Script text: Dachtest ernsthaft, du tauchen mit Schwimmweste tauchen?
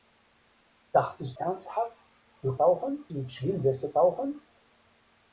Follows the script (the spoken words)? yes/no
yes